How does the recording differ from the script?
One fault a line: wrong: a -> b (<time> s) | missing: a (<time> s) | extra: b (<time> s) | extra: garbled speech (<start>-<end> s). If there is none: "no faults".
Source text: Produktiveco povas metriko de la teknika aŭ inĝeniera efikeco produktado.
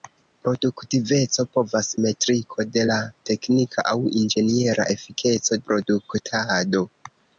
no faults